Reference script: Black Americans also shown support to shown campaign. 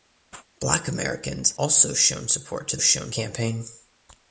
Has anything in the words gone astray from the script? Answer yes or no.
no